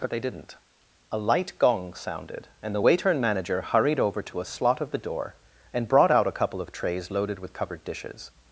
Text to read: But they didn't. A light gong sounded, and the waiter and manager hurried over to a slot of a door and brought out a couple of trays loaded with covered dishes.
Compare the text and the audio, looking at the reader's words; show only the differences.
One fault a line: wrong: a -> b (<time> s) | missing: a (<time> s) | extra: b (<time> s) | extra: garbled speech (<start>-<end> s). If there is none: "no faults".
wrong: a -> the (4.9 s)